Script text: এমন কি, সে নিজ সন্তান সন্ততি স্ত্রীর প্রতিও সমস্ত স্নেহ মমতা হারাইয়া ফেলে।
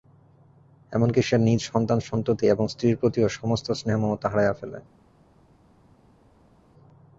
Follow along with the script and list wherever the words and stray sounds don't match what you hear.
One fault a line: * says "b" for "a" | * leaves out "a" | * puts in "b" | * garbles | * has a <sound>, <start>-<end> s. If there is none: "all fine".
* puts in "এবং"